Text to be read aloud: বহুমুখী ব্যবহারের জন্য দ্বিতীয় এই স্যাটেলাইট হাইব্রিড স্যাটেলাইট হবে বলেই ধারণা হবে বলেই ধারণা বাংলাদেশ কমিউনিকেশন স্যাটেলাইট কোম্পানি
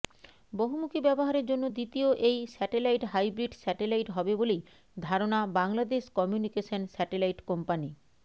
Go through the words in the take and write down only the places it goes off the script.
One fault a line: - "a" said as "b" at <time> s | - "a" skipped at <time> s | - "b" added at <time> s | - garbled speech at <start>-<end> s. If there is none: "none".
- "হবে বলেই ধারণা" skipped at 5.4 s